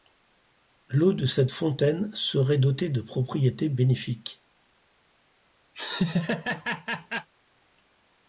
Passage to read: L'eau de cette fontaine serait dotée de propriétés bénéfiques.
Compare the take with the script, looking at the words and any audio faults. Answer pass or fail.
fail